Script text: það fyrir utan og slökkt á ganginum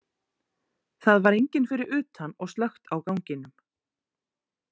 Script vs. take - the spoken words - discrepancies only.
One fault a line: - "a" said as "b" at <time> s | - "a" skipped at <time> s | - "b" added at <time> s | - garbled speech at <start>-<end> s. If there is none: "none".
- "var enginn" added at 1.3 s